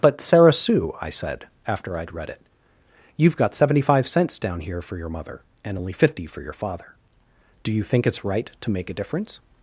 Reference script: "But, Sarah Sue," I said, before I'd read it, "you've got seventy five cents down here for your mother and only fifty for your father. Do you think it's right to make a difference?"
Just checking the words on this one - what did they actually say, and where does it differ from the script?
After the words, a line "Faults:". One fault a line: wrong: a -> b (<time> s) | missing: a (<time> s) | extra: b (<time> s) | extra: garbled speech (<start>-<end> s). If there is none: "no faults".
"But, Sarah Sue," I said, after I'd read it, "you've got seventy five cents down here for your mother and only fifty for your father. Do you think it's right to make a difference?"
Faults:
wrong: before -> after (1.7 s)